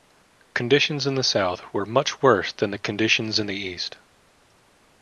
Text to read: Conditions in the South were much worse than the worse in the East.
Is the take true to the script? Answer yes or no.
no